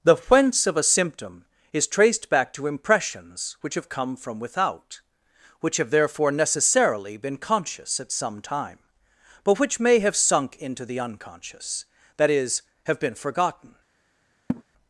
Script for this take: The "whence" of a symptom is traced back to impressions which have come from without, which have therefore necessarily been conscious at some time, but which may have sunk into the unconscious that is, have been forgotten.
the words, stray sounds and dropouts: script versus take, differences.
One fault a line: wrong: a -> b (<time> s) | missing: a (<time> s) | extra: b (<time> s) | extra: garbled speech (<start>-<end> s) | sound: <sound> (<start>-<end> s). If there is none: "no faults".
sound: laugh (14.5-14.6 s)